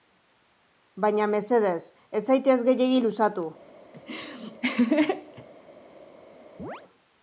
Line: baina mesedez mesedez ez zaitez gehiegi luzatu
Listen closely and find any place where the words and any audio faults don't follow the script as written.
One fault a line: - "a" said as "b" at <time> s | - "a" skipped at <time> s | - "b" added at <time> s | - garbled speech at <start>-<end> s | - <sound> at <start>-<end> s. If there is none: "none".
- "mesedez" skipped at 1.8 s
- laugh at 3.9-5.5 s
- chirp at 6.6-6.8 s